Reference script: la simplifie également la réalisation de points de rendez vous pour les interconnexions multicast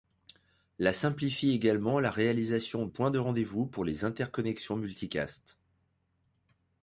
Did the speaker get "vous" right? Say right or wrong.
right